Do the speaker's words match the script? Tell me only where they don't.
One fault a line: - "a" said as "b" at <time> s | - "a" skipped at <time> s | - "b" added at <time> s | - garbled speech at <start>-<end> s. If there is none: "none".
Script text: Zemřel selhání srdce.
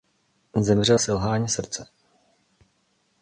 none